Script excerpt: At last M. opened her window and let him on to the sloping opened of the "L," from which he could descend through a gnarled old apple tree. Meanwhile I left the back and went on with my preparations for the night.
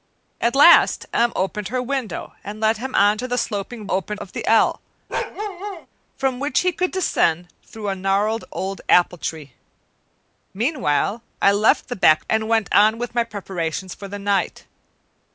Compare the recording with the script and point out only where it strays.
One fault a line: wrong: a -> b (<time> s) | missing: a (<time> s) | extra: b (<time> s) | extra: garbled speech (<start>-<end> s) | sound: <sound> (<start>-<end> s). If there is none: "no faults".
sound: bark (5.1-5.9 s)